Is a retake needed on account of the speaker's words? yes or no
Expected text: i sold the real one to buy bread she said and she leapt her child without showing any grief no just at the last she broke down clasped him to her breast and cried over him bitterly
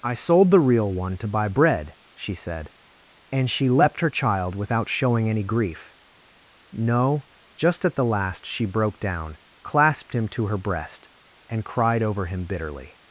no